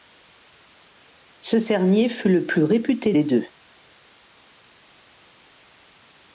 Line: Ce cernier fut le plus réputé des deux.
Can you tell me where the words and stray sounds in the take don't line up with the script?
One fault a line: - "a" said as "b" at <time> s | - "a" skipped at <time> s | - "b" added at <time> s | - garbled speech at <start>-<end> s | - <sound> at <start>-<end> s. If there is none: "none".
none